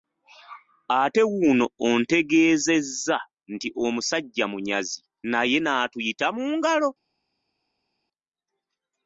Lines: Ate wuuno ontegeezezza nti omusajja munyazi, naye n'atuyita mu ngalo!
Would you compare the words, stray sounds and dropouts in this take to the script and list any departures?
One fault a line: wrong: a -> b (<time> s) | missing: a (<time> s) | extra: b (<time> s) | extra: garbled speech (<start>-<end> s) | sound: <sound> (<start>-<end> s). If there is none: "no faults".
no faults